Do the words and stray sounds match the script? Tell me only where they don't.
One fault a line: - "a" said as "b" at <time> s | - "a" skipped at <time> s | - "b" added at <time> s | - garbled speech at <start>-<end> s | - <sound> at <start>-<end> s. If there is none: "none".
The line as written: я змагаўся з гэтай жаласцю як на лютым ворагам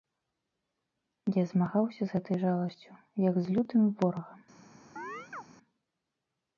- "на" said as "з" at 3.4 s
- chirp at 5.0-5.4 s